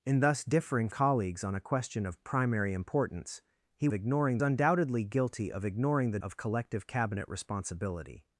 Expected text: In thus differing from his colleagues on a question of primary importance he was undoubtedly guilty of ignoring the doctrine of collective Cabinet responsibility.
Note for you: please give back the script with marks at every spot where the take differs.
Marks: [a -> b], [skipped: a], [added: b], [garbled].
In thus differing [skipped: from his] colleagues on a question of primary importance he [was -> ignoring] undoubtedly guilty of ignoring the [skipped: doctrine] of collective Cabinet responsibility.